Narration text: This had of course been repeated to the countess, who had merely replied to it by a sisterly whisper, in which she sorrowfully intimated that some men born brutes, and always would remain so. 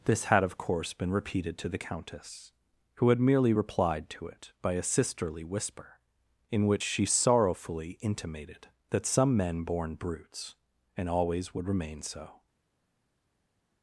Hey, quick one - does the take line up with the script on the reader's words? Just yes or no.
yes